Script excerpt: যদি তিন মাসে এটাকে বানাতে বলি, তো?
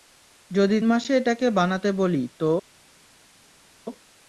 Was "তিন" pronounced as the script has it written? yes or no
no